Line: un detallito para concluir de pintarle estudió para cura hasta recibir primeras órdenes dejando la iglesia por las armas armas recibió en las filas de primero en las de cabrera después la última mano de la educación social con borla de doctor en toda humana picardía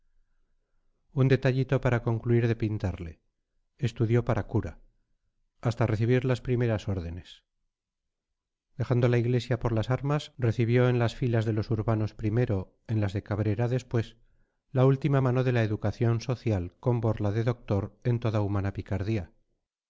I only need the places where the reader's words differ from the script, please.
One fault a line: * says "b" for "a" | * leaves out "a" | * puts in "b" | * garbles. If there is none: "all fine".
* puts in "las"
* leaves out "armas"
* puts in "los urbanos"